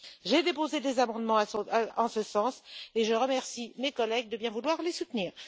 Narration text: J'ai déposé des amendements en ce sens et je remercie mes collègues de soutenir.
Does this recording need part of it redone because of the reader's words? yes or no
yes